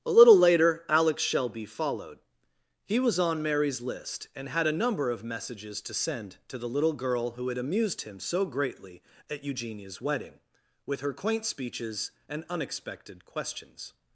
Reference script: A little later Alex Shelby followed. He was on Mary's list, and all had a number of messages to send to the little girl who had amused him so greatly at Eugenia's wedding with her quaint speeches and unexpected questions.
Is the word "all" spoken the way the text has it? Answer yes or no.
no